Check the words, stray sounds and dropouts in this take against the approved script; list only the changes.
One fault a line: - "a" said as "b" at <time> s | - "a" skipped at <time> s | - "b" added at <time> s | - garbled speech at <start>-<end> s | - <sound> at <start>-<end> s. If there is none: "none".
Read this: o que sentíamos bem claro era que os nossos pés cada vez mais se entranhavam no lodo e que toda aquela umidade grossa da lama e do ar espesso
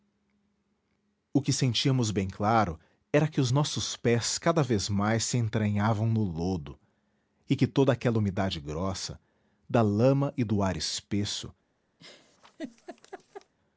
- laugh at 12.0-13.5 s